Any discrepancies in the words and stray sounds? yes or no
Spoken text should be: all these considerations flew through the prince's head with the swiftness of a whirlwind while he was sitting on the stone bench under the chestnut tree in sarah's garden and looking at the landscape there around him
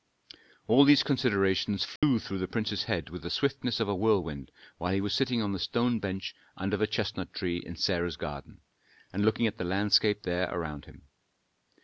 yes